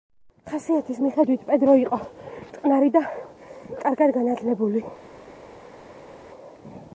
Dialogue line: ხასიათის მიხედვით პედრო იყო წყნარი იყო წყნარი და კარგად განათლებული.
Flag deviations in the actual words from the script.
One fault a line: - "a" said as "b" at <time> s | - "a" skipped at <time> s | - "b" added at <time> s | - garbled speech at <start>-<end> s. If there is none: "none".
- "იყო წყნარი" skipped at 2.9 s